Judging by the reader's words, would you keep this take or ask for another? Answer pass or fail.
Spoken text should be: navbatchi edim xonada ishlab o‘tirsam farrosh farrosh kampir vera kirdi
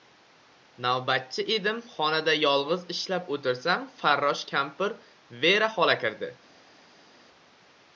fail